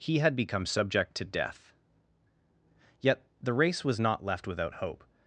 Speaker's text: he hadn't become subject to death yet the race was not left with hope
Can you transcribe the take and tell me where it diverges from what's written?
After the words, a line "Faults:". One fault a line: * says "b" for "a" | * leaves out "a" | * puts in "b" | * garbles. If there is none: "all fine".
he had become subject to death yet the race was not left without hope
Faults:
* says "had" for "hadn't"
* says "without" for "with"